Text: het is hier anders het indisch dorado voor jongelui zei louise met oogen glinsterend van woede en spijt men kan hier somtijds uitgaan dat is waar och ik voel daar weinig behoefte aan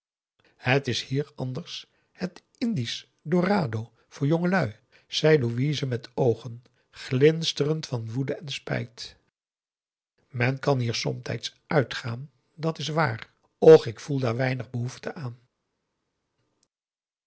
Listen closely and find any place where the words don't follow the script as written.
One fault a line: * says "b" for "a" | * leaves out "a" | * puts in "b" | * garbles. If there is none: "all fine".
all fine